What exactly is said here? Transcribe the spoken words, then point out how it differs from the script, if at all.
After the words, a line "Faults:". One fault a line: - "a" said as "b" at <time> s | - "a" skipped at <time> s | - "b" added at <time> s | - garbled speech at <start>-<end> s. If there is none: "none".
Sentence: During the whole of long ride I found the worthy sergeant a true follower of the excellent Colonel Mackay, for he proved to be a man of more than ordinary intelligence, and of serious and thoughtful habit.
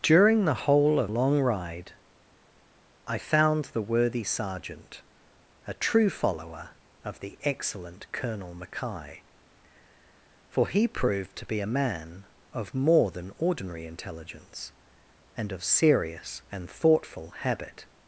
During the whole of long ride I found the worthy sergeant a true follower of the excellent Colonel Mackay, for he proved to be a man of more than ordinary intelligence, and of serious and thoughtful habit.
Faults:
none